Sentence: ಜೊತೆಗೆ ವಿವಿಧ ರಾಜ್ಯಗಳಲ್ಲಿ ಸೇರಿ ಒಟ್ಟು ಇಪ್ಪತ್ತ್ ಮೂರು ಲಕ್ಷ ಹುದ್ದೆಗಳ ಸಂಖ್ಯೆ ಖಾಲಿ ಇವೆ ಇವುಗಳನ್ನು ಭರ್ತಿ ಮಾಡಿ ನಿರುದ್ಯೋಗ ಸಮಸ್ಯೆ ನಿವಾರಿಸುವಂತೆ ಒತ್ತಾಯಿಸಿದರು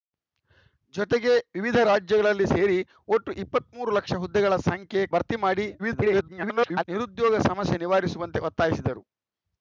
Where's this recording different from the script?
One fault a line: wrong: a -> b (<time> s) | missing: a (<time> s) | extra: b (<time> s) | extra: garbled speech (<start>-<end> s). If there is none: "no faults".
missing: ಖಾಲಿ ಇವೆ ಇವುಗಳನ್ನು (5.0 s)
extra: garbled speech (5.8-6.8 s)